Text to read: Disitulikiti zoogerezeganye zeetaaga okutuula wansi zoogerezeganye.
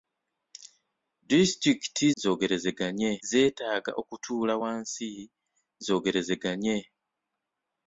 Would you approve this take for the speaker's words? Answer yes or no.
yes